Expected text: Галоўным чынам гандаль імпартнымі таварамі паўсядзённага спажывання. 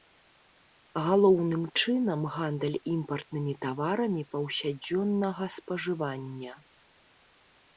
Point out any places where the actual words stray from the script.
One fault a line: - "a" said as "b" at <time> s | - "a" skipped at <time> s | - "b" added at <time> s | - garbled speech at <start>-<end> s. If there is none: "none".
none